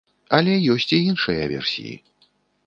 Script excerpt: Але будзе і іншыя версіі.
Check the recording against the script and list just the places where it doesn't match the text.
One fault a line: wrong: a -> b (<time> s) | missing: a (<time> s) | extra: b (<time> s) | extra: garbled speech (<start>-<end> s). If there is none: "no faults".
wrong: будзе -> ёсць (0.8 s)